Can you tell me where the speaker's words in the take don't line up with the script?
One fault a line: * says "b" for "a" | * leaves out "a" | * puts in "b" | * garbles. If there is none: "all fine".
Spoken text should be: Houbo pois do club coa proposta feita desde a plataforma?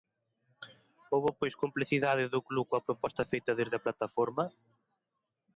* puts in "complicidade"